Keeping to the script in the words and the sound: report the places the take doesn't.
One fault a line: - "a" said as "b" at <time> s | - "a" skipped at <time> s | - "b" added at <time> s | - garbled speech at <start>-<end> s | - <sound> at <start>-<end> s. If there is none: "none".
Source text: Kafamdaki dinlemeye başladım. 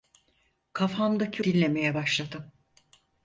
none